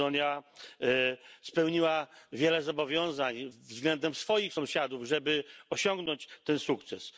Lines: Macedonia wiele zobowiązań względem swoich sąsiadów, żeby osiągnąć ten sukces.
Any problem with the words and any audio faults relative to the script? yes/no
yes